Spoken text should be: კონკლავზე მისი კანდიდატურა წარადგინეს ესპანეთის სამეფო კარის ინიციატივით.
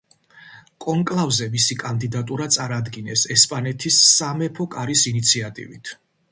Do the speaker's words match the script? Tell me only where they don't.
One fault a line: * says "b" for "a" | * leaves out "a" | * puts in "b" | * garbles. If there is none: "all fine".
all fine